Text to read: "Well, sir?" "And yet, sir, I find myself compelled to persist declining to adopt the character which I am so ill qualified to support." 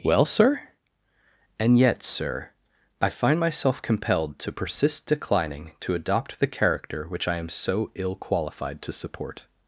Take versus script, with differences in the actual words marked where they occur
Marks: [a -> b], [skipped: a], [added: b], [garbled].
"Well, sir?" "And yet, sir, I find myself compelled to persist declining to adopt the character which I am so ill qualified to support."